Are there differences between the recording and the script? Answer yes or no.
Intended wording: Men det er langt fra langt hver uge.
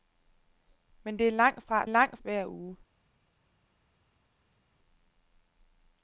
no